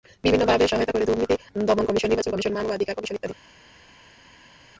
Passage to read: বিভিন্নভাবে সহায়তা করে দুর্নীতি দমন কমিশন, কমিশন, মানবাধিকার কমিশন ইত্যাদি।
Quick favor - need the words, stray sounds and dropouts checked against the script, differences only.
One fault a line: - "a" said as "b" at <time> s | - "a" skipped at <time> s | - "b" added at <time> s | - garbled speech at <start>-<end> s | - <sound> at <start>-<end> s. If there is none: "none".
- "নির্বাচন" added at 2.1 s